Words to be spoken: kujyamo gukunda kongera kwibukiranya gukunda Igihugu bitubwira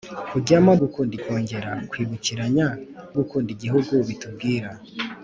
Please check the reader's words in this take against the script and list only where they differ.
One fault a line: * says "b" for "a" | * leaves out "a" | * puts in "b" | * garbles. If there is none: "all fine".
all fine